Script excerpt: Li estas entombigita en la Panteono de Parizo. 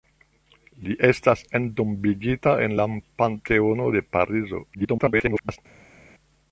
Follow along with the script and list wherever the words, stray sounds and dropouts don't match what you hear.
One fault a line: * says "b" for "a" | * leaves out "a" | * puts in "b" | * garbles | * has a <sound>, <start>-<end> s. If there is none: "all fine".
* garbles